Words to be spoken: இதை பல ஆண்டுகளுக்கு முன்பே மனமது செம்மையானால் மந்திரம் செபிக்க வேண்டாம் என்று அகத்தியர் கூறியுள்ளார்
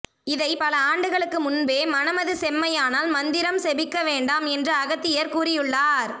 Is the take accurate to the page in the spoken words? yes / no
yes